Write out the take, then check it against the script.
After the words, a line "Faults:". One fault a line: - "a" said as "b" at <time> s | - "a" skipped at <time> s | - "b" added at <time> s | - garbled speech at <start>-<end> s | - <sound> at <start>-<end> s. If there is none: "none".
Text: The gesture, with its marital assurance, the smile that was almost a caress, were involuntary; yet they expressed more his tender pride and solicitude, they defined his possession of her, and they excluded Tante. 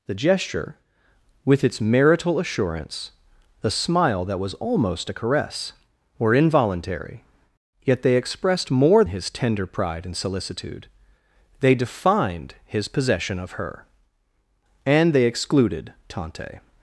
The gesture, with its marital assurance, the smile that was almost a caress, were involuntary; yet they expressed more his tender pride and solicitude, they defined his possession of her, and they excluded Tante.
Faults:
none